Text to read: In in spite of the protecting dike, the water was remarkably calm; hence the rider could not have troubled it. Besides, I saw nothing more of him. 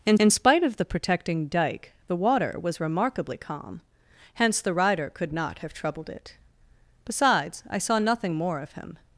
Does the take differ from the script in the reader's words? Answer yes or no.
no